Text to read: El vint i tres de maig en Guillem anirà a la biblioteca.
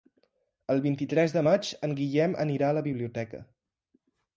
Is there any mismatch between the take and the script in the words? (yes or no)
no